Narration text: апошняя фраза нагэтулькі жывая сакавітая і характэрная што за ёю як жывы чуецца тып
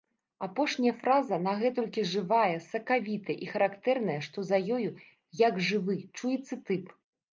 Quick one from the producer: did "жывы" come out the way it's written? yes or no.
yes